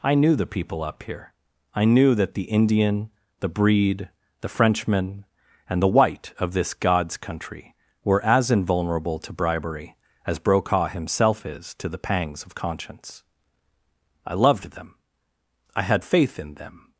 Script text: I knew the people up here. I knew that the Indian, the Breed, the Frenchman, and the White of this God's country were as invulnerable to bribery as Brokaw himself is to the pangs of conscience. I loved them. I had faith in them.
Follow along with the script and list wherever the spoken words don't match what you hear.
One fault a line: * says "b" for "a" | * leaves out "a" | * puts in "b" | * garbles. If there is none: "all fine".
all fine